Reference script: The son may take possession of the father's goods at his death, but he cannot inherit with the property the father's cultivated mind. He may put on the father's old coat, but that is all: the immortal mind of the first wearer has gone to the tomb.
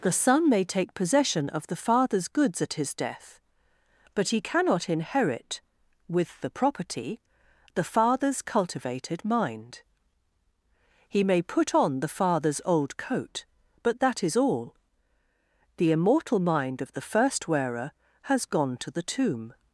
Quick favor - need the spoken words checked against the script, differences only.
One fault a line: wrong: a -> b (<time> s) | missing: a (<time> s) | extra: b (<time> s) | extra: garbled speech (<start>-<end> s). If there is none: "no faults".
no faults